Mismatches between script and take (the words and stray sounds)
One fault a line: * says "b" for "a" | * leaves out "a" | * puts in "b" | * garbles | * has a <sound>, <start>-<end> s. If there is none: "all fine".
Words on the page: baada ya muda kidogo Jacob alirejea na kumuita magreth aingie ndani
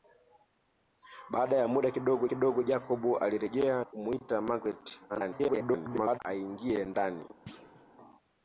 * puts in "kidogo"
* leaves out "na"
* garbles
* has a thud, 7.5-7.9 s